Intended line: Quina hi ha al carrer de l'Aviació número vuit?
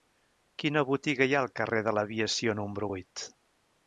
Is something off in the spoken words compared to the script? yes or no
yes